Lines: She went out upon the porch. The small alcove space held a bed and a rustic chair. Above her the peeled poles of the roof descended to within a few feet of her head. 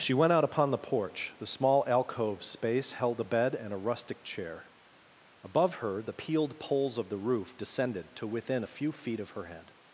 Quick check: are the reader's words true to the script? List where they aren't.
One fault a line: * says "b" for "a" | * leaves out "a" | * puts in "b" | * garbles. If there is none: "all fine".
all fine